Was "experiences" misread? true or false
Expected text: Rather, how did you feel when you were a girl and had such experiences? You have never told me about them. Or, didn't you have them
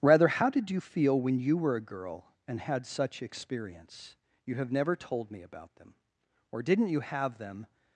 true